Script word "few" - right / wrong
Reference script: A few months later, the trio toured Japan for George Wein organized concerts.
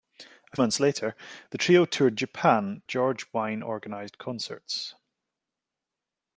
wrong